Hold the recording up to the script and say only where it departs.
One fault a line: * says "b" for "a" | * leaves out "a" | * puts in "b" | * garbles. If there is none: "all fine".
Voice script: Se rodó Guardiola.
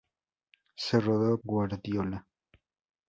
all fine